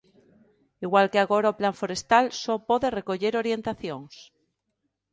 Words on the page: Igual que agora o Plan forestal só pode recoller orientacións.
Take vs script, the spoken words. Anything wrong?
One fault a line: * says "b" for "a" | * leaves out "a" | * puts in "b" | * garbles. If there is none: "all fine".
all fine